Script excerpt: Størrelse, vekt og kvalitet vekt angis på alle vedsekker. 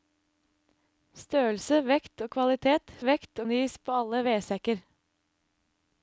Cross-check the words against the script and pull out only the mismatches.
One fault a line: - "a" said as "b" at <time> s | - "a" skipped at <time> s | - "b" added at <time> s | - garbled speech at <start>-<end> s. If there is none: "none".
none